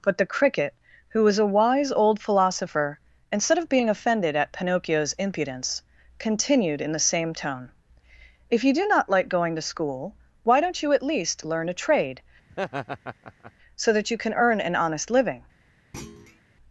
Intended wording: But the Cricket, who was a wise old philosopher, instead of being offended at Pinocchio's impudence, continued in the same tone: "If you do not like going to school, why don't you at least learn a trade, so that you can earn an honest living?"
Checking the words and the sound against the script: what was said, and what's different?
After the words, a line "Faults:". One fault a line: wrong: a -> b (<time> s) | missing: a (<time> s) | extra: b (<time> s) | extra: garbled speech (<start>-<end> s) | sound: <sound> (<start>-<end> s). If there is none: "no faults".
But the Cricket, who was a wise old philosopher, instead of being offended at Pinocchio's impudence, continued in the same tone: "If you do not like going to school, why don't you at least learn a trade, so that you can earn an honest living?"
Faults:
sound: laugh (12.5-13.5 s)
sound: thud (15.9-16.4 s)